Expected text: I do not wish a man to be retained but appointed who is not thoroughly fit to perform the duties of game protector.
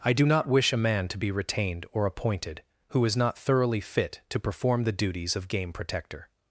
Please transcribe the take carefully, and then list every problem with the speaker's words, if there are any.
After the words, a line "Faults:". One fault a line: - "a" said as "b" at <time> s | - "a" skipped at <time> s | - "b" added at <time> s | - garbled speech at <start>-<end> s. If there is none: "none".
I do not wish a man to be retained or appointed who is not thoroughly fit to perform the duties of game protector.
Faults:
- "but" said as "or" at 1.9 s